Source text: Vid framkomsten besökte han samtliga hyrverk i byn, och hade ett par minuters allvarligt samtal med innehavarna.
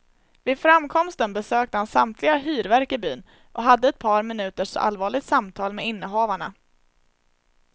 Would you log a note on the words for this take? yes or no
no